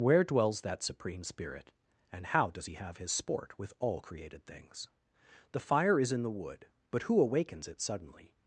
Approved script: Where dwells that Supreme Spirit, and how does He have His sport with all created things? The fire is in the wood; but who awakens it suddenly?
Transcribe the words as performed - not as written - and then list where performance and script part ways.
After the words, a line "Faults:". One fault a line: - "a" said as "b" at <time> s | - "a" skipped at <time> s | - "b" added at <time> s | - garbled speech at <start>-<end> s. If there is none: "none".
Where dwells that Supreme Spirit, and how does He have His sport with all created things? The fire is in the wood; but who awakens it suddenly?
Faults:
none